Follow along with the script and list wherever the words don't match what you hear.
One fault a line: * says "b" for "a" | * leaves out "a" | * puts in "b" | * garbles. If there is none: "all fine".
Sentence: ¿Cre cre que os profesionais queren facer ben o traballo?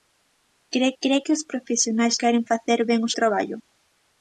all fine